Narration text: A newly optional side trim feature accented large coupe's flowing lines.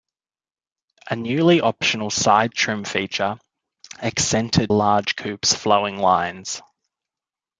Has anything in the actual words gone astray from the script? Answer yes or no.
no